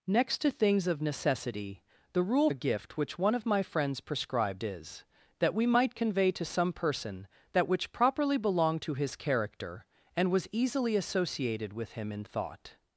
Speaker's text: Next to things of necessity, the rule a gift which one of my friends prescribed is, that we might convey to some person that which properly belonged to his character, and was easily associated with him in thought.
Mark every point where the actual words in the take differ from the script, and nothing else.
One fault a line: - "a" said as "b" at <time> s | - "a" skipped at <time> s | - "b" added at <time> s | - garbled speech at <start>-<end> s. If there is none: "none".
none